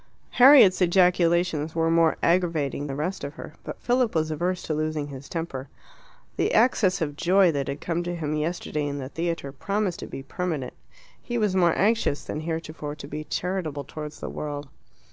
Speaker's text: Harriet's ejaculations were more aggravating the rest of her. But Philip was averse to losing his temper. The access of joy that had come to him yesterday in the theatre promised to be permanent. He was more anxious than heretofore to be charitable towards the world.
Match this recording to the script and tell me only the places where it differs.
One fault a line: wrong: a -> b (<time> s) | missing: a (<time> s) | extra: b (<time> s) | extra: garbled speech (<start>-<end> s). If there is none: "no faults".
no faults